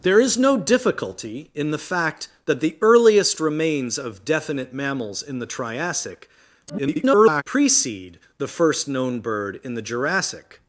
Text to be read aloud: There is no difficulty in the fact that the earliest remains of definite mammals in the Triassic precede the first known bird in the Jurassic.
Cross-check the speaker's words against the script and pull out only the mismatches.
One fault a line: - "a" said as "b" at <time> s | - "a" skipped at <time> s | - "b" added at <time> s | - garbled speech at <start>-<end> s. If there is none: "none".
- garbled speech at 6.7-7.4 s